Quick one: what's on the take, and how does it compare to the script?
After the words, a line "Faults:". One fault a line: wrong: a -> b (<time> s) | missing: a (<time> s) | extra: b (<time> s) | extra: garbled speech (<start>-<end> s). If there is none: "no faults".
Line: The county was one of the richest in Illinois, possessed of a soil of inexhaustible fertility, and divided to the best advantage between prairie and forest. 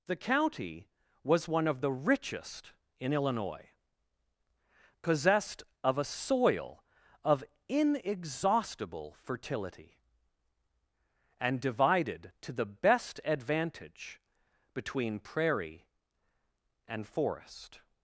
The county was one of the richest in Illinois, possessed of a soil of inexhaustible fertility, and divided to the best advantage between prairie and forest.
Faults:
no faults